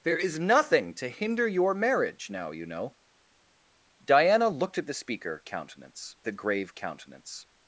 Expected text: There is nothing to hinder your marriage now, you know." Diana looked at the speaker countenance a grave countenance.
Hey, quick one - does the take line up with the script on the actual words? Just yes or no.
yes